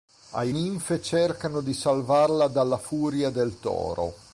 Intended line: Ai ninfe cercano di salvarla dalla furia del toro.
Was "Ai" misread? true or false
false